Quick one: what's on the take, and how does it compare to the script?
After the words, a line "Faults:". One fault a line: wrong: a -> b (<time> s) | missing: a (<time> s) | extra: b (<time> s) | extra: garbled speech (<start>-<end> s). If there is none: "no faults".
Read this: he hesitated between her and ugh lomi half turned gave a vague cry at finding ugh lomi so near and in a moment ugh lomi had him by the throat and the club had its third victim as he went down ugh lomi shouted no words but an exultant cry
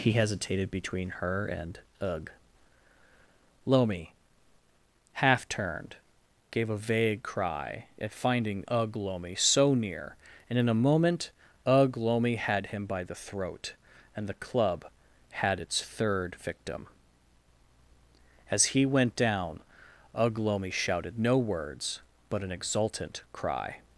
he hesitated between her and ugh lomi half turned gave a vague cry at finding ugh lomi so near and in a moment ugh lomi had him by the throat and the club had its third victim as he went down ugh lomi shouted no words but an exultant cry
Faults:
no faults